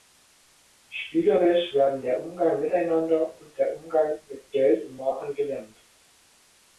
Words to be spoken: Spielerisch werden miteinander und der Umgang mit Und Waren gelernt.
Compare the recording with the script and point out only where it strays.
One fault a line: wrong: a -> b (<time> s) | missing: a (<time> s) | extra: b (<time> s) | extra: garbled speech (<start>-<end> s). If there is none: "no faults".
extra: der Umgang (2.0 s)
extra: Geld (4.5 s)